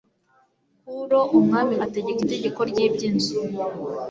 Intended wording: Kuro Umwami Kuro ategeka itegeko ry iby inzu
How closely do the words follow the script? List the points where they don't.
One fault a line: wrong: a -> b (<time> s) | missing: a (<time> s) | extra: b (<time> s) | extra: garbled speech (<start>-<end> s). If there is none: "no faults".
missing: Kuro (1.8 s)